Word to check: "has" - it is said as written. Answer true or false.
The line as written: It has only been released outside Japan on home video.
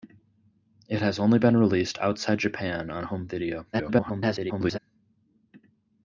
true